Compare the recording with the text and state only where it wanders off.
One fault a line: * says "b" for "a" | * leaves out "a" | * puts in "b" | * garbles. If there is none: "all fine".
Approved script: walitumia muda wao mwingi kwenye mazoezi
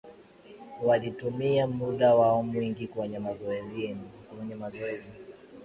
all fine